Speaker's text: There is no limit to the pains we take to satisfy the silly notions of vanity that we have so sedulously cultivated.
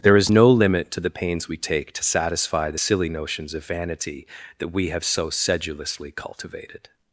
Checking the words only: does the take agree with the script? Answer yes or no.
yes